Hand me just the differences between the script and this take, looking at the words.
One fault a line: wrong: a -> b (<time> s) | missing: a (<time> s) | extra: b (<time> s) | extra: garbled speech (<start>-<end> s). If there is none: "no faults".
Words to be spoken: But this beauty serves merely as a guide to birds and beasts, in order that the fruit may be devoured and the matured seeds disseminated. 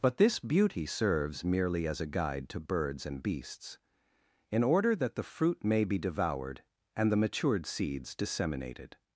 no faults